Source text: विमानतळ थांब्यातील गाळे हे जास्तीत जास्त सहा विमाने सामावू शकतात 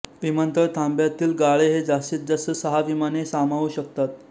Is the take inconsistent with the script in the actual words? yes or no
no